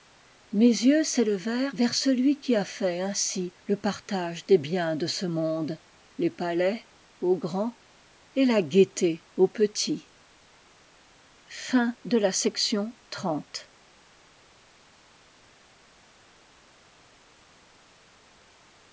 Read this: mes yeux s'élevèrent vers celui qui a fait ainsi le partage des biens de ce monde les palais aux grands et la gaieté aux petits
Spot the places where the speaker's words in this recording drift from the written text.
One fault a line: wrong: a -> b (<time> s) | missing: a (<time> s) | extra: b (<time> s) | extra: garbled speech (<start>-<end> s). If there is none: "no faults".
no faults